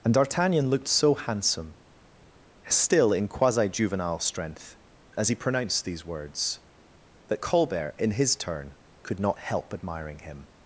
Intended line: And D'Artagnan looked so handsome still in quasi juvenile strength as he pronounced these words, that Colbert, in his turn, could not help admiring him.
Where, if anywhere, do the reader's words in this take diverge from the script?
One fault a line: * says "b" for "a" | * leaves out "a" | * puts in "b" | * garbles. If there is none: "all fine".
all fine